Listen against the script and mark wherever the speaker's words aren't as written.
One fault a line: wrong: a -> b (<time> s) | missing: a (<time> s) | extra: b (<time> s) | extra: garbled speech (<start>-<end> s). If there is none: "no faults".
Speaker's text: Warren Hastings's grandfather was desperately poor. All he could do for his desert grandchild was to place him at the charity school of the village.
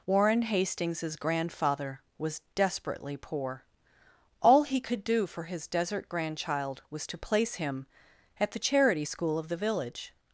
no faults